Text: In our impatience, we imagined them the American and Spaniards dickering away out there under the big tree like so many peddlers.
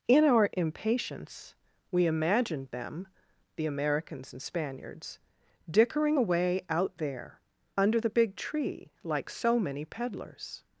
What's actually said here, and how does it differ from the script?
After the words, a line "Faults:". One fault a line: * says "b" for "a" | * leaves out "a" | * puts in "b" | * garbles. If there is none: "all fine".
In our impatience, we imagined them the Americans and Spaniards dickering away out there under the big tree like so many peddlers.
Faults:
* says "Americans" for "American"